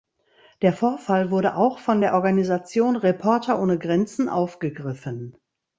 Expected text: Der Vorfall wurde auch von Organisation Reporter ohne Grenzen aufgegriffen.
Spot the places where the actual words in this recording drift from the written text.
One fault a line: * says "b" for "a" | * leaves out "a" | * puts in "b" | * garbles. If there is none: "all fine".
* puts in "der"